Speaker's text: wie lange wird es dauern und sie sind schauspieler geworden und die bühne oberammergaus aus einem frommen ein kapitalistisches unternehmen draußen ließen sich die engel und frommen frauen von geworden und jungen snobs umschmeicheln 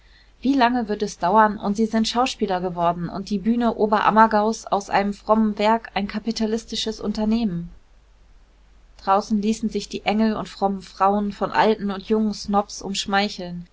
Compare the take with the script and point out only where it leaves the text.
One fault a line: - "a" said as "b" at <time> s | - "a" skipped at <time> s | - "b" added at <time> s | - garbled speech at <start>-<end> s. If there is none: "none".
- "werk" added at 5.6 s
- "geworden" said as "alten" at 11.5 s